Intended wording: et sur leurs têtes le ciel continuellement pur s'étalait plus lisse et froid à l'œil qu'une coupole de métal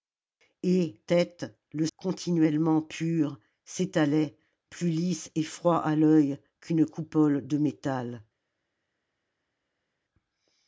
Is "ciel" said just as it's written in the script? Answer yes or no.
no